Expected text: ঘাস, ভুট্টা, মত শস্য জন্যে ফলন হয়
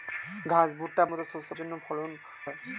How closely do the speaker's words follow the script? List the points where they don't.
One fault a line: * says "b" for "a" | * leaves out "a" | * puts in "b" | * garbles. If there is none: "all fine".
all fine